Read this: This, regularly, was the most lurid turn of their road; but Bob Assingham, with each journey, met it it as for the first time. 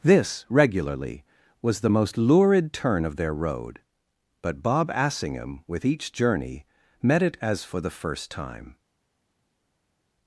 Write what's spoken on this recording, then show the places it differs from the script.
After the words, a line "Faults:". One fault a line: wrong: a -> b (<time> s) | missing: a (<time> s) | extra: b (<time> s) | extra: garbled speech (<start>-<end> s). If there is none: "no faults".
This, regularly, was the most lurid turn of their road; but Bob Assingham, with each journey, met it as for the first time.
Faults:
missing: it (7.4 s)